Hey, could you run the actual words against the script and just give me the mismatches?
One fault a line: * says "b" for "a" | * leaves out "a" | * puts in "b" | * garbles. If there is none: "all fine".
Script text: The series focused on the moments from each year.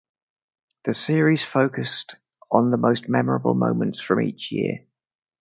* puts in "most memorable"